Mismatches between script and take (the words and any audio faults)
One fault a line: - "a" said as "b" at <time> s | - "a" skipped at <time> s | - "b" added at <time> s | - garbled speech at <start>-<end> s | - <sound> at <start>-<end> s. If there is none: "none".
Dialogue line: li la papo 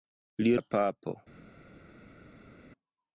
none